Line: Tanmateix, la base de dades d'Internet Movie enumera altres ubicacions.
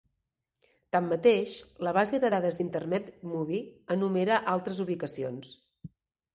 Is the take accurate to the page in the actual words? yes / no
yes